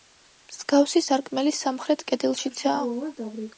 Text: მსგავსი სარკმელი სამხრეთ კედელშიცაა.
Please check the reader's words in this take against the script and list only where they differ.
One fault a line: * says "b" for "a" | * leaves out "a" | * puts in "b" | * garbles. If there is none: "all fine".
all fine